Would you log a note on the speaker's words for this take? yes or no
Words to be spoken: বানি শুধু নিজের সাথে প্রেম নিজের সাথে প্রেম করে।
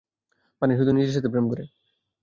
yes